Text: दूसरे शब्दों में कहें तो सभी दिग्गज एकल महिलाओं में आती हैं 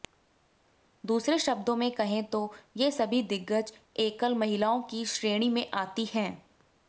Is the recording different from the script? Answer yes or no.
yes